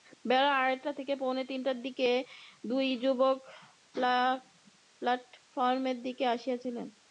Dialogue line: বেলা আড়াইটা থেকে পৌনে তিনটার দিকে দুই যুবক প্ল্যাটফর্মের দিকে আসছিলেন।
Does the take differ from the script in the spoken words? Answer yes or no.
no